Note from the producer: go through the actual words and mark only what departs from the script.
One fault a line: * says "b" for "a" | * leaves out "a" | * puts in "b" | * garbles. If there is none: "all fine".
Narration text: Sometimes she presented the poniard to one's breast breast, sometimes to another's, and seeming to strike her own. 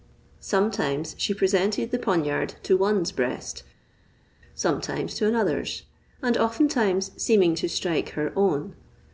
* leaves out "breast"
* puts in "oftentimes"